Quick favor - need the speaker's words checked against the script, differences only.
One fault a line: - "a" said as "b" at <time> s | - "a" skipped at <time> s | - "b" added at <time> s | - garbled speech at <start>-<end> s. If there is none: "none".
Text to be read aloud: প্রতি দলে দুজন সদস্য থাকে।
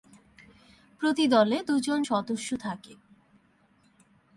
none